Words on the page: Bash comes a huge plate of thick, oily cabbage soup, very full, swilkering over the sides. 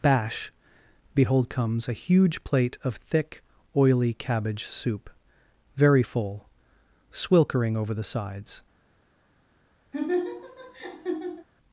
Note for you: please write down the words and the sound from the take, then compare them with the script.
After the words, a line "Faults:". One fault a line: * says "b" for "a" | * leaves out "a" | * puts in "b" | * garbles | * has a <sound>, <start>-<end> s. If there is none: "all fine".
Bash behold comes a huge plate of thick, oily cabbage soup, very full, swilkering over the sides.
Faults:
* puts in "behold"
* has a laugh, 9.9-11.5 s